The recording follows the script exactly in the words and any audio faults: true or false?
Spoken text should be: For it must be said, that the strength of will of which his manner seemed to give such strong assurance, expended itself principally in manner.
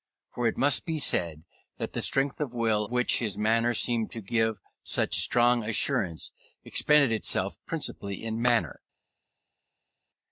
false